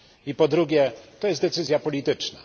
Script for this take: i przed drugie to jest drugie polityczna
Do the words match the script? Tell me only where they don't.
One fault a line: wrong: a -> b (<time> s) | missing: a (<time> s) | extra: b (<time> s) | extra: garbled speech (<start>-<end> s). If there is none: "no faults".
wrong: przed -> po (0.3 s)
wrong: drugie -> decyzja (1.4 s)